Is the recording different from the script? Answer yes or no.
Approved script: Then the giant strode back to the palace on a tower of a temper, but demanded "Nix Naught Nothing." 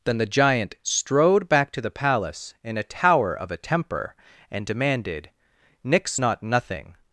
yes